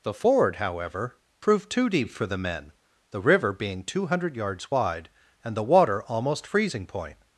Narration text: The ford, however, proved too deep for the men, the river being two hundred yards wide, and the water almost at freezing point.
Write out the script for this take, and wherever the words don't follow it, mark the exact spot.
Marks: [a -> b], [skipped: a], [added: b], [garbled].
The ford, however, proved too deep for the men, the river being two hundred yards wide, and the water almost [skipped: at] freezing point.